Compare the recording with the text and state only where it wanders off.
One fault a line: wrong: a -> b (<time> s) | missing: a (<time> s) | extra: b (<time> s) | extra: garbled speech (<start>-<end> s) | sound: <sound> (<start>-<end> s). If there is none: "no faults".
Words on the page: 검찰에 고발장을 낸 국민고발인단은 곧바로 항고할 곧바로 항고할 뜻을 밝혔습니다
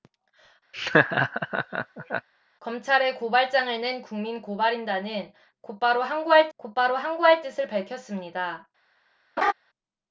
sound: laugh (0.7-2.3 s)
sound: laugh (9.4-9.5 s)